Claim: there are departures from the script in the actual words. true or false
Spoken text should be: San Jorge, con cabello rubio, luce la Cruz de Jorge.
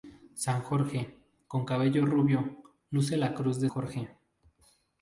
false